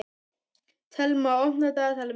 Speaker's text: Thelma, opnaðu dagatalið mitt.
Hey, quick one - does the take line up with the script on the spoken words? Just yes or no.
yes